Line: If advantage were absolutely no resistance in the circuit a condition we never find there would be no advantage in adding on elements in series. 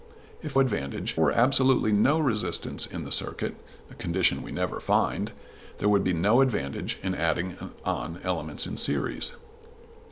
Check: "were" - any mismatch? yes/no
no